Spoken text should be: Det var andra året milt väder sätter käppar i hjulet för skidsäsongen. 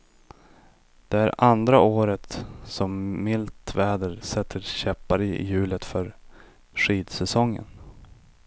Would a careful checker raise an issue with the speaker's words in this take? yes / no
yes